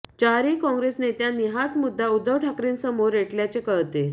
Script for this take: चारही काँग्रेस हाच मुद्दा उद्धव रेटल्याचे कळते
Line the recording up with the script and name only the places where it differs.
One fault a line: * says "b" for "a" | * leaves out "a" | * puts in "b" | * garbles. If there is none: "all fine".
* puts in "नेत्यांनी"
* puts in "ठाकरेंसमोर"